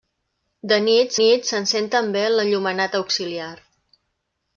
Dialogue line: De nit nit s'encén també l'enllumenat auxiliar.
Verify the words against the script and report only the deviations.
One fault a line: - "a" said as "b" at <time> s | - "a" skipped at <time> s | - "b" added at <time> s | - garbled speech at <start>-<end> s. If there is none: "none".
none